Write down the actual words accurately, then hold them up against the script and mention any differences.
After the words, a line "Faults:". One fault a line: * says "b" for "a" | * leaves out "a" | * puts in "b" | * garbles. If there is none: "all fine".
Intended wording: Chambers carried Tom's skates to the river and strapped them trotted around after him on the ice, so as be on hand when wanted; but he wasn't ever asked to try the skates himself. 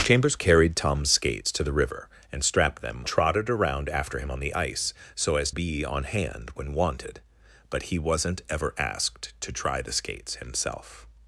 Chambers carried Tom's skates to the river and strapped them trotted around after him on the ice, so as be on hand when wanted; but he wasn't ever asked to try the skates himself.
Faults:
all fine